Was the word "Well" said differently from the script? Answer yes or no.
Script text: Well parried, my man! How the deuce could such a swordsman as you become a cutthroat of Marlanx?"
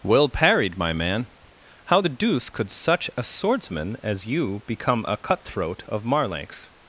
no